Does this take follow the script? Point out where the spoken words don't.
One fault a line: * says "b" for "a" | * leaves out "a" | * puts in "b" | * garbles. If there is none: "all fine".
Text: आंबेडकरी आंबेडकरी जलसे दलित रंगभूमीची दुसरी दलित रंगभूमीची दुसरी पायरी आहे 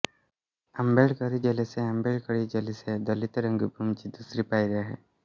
* puts in "जलसे"
* leaves out "दलित रंगभूमीची दुसरी"